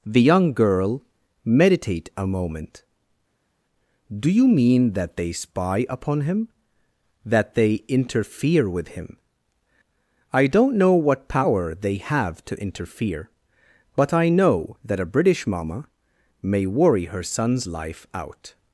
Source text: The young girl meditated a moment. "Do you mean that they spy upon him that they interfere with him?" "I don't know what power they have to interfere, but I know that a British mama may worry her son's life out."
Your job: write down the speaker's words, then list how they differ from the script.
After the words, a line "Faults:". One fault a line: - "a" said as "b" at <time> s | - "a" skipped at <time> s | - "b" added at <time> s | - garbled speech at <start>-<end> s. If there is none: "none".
The young girl meditate a moment. "Do you mean that they spy upon him that they interfere with him?" "I don't know what power they have to interfere, but I know that a British mama may worry her son's life out."
Faults:
- "meditated" said as "meditate" at 1.4 s